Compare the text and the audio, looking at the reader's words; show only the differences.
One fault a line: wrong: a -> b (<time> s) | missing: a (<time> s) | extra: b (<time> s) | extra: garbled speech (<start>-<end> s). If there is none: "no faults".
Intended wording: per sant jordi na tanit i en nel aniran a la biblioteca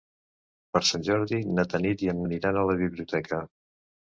missing: nel (2.2 s)